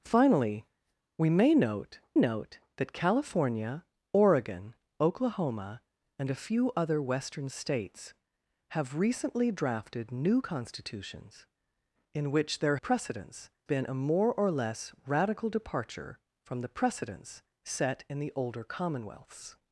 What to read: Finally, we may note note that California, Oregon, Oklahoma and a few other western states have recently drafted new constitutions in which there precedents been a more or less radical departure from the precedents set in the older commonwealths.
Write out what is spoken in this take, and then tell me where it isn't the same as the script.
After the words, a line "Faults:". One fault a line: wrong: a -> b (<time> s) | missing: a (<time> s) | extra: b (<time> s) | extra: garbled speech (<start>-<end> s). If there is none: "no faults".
Finally, we may note note that California, Oregon, Oklahoma and a few other western states have recently drafted new constitutions in which there precedents been a more or less radical departure from the precedents set in the older commonwealths.
Faults:
no faults